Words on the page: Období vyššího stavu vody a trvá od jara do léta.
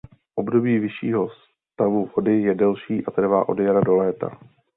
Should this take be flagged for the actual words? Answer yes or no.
yes